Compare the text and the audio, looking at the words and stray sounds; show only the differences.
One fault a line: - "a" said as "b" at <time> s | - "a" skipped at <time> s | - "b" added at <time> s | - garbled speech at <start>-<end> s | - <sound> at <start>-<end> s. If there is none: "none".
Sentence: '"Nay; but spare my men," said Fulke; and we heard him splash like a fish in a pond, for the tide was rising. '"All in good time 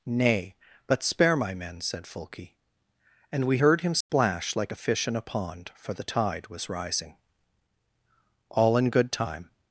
- dropout at 4.0-4.1 s